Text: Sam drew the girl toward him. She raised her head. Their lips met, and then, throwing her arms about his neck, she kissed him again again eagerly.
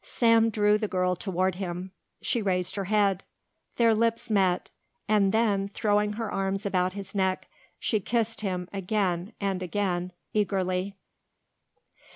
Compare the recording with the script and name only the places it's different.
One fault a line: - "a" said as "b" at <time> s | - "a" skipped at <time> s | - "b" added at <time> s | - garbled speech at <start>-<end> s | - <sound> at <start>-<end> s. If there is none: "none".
- "and" added at 9.4 s